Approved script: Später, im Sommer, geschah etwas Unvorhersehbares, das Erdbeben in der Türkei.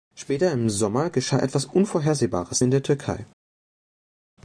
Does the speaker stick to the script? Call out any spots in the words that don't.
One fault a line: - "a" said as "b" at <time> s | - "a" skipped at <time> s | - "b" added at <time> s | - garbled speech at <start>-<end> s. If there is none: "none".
- "das Erdbeben" skipped at 2.6 s